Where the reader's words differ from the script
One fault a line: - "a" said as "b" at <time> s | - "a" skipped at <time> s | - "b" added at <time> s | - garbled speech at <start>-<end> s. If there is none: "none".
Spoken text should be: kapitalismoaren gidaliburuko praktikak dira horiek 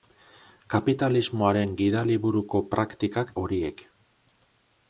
- "dira" skipped at 3.4 s